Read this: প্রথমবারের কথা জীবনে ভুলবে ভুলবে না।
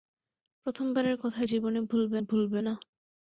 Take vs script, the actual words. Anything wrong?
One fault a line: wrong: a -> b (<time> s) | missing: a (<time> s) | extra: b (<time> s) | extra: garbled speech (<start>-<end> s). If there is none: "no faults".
no faults